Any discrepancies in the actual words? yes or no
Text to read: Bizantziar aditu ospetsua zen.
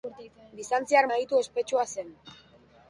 no